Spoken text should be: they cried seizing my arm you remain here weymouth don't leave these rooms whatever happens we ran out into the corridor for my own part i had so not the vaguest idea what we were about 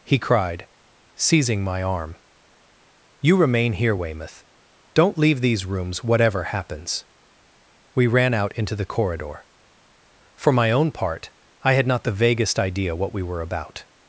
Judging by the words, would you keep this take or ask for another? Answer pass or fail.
fail